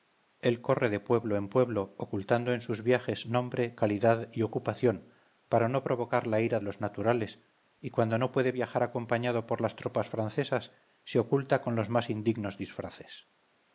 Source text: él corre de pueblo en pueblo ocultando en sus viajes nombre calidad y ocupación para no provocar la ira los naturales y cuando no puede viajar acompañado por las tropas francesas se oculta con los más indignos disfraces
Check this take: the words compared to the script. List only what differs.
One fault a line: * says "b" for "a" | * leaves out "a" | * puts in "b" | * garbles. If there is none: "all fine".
all fine